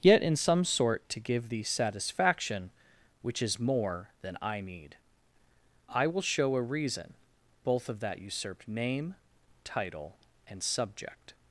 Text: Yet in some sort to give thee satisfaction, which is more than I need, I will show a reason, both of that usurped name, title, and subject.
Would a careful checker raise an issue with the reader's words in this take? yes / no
no